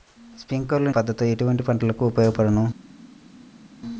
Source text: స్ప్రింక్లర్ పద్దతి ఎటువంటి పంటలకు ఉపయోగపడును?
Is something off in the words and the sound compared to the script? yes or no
no